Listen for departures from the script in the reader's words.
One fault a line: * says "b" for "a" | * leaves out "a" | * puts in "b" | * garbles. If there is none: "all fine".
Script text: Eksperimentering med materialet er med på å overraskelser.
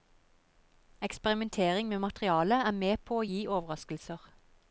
* puts in "gi"